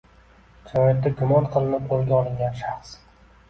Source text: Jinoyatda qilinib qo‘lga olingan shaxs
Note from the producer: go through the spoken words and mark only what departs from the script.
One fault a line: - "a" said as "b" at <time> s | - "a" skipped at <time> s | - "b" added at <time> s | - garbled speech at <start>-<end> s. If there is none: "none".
- "gumon" added at 1.2 s